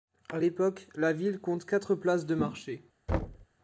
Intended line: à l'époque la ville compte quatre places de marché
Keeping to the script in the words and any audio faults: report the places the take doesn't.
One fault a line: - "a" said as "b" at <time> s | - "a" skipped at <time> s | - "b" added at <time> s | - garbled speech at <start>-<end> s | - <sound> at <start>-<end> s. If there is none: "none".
- thud at 3.1-3.5 s